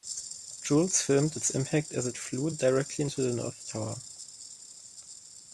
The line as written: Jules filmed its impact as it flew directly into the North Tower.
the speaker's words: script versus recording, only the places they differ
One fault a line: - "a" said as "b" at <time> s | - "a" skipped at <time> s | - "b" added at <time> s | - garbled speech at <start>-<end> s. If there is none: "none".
none